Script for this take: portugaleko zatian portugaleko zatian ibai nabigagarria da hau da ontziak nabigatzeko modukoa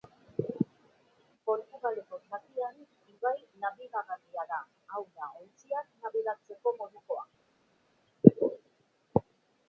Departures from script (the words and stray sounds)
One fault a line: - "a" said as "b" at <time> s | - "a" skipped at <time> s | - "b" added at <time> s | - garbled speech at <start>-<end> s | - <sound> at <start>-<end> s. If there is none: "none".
- "portugaleko zatian" skipped at 2.8 s